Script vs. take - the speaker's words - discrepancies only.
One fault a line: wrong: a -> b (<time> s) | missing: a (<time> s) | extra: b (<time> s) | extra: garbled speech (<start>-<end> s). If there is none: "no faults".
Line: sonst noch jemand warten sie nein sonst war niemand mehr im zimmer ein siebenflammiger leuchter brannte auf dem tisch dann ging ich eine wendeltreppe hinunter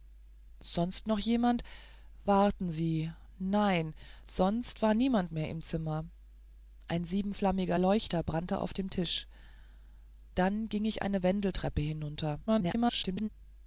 extra: garbled speech (12.5-13.3 s)